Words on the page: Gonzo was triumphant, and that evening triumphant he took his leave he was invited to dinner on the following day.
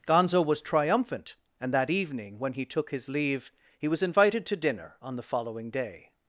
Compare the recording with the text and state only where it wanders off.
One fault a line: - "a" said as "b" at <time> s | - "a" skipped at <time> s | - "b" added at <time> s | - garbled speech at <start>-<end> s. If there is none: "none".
- "triumphant" said as "when" at 2.4 s